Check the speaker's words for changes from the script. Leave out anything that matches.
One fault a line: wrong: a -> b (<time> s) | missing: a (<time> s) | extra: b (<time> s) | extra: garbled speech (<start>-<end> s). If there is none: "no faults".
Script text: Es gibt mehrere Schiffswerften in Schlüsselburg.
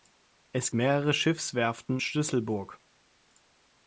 missing: gibt (0.7 s)
missing: in (2.0 s)